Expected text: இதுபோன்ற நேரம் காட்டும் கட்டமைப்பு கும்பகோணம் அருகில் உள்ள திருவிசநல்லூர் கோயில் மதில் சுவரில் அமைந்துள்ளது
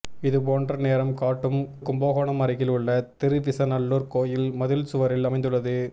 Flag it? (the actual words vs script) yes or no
yes